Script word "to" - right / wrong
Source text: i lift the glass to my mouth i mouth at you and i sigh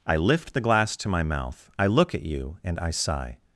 right